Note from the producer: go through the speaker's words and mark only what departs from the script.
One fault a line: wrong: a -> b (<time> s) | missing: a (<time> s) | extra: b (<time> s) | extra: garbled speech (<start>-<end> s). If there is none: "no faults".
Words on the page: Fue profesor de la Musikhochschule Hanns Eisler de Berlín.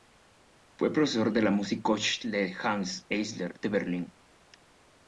no faults